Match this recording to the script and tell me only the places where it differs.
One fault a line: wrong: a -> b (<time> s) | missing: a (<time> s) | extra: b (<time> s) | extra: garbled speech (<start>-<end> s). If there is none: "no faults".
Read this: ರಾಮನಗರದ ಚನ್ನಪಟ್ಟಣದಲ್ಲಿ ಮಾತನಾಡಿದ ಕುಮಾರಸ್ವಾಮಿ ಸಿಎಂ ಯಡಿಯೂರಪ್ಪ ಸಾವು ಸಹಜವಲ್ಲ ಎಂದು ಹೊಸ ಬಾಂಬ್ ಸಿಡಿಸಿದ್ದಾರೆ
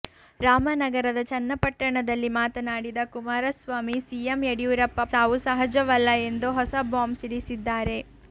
no faults